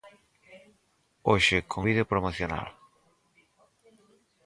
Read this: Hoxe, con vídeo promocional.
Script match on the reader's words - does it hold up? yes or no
yes